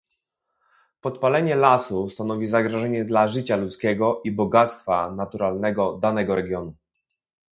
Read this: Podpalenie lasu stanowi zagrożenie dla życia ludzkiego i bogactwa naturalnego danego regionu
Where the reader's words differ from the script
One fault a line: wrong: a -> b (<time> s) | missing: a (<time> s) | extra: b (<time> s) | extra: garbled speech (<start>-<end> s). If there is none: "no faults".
no faults